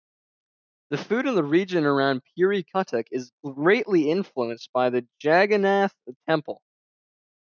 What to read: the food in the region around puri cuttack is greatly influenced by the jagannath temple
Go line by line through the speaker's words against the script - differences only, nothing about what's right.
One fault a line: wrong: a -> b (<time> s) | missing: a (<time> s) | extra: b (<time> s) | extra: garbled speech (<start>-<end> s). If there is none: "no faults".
no faults